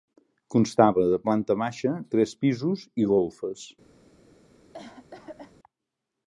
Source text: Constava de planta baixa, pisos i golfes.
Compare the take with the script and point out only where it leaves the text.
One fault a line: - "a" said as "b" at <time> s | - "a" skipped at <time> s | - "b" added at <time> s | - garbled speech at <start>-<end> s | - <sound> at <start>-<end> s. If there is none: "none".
- "tres" added at 2.1 s
- cough at 4.7-5.5 s